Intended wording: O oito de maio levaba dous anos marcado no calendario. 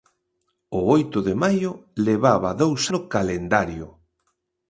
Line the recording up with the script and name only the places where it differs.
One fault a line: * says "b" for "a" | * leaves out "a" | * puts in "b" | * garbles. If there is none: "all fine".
* leaves out "anos marcado"